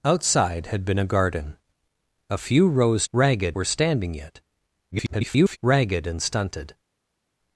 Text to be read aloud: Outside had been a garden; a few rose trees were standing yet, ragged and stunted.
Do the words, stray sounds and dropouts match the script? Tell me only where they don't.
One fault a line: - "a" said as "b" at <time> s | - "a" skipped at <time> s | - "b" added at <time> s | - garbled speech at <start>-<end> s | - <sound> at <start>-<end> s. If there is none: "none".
- "trees" said as "ragged" at 3.1 s
- garbled speech at 4.9-5.6 s